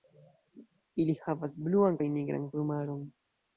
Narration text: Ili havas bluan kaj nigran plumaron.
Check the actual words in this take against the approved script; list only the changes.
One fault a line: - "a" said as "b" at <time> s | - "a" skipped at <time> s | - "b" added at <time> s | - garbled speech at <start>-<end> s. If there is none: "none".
none